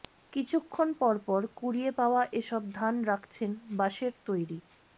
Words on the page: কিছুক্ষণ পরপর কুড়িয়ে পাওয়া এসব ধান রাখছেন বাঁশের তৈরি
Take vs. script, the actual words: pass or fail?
pass